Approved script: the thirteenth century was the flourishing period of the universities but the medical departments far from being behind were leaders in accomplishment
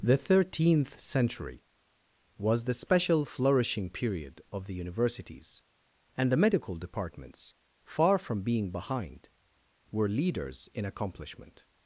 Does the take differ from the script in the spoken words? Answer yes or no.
yes